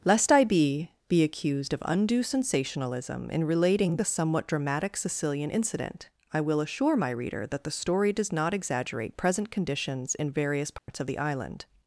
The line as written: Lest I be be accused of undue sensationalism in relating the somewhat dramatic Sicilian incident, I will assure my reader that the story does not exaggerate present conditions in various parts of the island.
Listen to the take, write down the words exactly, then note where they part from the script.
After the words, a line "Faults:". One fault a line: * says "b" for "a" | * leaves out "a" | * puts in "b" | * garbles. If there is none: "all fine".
Lest I be be accused of undue sensationalism in relating the somewhat dramatic Sicilian incident, I will assure my reader that the story does not exaggerate present conditions in various parts of the island.
Faults:
all fine